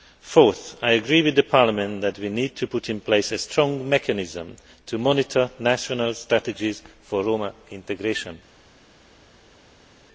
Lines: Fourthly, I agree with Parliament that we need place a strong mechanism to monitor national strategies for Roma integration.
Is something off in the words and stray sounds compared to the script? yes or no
yes